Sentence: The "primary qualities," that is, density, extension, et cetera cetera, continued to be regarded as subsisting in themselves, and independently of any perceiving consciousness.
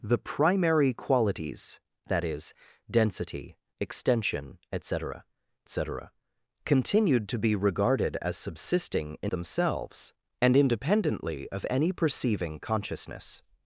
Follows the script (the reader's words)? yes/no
yes